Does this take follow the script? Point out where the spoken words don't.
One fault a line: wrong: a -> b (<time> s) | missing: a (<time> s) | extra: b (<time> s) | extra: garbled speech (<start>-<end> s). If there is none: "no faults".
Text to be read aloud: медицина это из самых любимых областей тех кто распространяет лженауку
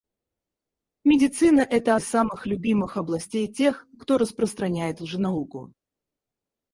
no faults